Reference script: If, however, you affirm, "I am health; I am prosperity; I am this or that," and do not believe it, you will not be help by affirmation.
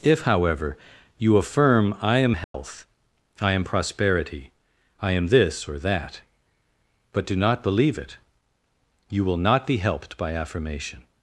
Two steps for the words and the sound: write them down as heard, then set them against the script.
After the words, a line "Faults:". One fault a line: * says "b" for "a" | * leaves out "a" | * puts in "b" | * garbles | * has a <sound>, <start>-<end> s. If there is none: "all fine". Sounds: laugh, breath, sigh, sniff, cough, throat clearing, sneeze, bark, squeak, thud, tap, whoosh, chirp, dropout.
If, however, you affirm, "I am health; I am prosperity; I am this or that," but do not believe it, you will not be helped by affirmation.
Faults:
* has a dropout, 2.4-2.5 s
* says "but" for "and"
* says "helped" for "help"